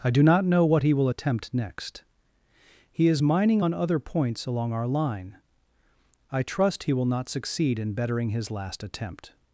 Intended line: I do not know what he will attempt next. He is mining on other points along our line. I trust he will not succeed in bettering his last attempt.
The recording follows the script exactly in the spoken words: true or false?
true